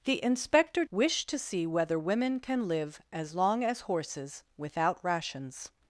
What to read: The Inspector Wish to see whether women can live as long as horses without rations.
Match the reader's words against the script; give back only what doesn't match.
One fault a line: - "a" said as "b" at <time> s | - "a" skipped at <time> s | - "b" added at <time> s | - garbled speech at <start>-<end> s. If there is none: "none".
none